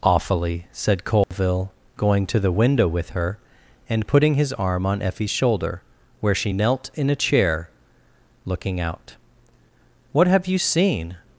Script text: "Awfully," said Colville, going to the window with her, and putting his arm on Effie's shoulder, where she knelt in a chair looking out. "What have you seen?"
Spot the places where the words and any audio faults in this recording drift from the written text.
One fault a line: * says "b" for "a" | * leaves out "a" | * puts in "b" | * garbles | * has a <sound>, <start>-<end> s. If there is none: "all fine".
* has a dropout, 1.2-1.3 s